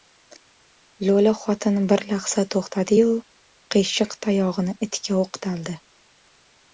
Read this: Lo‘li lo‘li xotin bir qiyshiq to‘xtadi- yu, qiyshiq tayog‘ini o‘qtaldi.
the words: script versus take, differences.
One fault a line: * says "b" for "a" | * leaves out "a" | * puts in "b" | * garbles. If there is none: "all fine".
* leaves out "lo‘li"
* says "lahza" for "qiyshiq"
* puts in "itga"